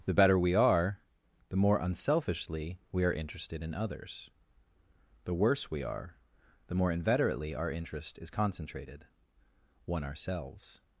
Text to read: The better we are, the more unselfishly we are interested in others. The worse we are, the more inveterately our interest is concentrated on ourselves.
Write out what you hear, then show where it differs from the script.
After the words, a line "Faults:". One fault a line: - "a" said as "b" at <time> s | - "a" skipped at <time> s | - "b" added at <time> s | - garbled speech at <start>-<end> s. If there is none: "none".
The better we are, the more unselfishly we are interested in others. The worse we are, the more inveterately our interest is concentrated one ourselves.
Faults:
- "on" said as "one" at 9.8 s